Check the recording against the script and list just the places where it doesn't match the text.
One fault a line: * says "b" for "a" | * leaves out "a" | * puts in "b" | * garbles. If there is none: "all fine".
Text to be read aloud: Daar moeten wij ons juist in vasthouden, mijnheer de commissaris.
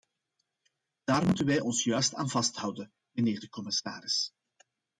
* says "aan" for "in"